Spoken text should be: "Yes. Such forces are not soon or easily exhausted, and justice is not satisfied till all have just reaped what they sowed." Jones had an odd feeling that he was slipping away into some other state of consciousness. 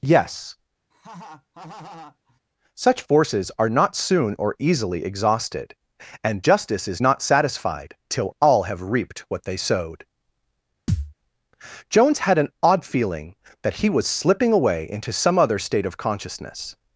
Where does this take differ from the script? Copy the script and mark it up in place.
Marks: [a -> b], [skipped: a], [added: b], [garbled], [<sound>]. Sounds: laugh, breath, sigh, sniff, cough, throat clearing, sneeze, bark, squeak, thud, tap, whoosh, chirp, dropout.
"Yes. [laugh] Such forces are not soon or easily exhausted, and justice is not satisfied till all have [skipped: just] reaped what they sowed." [thud] Jones had an odd feeling that he was slipping away into some other state of consciousness.